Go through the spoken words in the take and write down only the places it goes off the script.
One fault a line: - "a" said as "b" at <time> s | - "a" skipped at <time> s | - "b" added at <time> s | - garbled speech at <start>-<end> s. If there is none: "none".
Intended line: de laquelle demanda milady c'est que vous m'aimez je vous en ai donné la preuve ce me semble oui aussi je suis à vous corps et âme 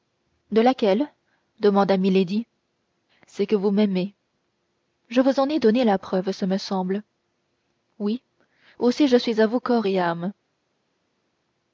none